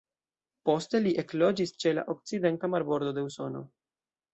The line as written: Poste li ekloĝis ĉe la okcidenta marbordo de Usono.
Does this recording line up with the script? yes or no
yes